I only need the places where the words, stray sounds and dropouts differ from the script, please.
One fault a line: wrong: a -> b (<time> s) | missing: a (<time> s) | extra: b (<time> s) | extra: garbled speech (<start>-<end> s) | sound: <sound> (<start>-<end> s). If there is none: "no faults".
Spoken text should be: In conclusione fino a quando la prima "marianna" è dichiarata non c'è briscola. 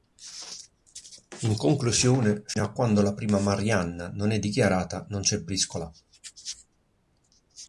extra: non (4.2 s)